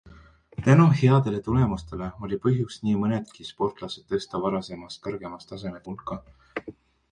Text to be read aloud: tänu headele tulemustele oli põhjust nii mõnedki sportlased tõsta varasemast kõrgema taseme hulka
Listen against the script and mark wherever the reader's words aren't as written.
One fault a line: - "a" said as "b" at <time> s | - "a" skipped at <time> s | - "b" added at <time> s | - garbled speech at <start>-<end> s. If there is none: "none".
none